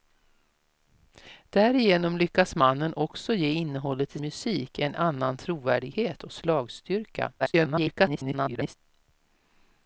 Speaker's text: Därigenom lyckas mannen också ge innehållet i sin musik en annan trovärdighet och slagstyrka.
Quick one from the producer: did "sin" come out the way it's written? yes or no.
no